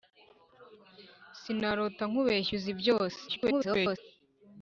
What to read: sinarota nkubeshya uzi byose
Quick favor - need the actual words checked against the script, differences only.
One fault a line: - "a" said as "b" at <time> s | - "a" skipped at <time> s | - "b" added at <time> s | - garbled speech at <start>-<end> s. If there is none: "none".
- garbled speech at 3.3-4.0 s